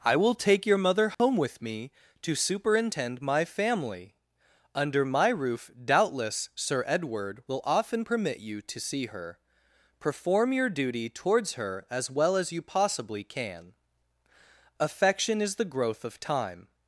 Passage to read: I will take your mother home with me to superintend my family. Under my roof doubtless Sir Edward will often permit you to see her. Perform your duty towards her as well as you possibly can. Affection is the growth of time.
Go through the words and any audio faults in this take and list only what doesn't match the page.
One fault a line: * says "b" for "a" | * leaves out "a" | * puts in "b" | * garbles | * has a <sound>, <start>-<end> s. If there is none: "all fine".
* has a dropout, 1.1-1.2 s